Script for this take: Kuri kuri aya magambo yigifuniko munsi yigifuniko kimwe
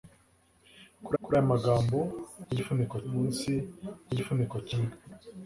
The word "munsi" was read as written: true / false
true